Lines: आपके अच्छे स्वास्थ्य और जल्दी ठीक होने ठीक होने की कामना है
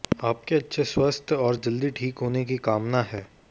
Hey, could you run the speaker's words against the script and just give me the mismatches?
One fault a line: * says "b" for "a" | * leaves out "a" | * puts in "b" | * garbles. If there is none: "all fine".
* leaves out "ठीक होने"